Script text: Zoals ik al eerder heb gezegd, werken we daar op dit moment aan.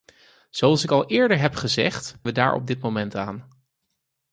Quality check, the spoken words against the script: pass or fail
fail